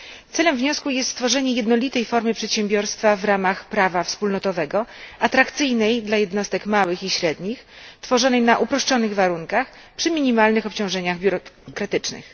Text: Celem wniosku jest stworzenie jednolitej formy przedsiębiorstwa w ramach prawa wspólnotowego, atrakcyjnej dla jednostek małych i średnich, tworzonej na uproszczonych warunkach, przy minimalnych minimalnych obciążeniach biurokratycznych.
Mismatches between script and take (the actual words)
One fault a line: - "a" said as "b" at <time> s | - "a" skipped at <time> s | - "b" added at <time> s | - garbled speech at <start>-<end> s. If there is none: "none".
- "minimalnych" skipped at 10.7 s